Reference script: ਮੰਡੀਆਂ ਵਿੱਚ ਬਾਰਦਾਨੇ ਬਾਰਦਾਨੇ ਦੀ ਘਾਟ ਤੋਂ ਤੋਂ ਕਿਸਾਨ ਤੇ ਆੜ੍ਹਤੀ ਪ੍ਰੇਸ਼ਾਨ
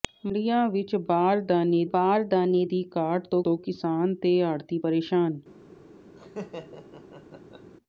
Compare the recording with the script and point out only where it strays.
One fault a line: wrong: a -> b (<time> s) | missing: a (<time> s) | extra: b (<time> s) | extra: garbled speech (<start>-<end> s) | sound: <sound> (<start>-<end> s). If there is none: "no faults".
sound: laugh (6.2-7.7 s)